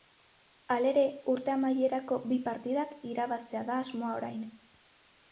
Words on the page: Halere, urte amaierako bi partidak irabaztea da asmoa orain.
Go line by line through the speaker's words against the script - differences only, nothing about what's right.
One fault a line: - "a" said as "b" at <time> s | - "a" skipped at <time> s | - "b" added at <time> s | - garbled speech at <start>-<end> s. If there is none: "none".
none